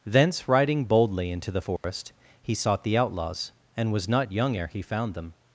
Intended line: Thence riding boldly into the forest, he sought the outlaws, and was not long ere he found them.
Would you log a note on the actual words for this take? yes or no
yes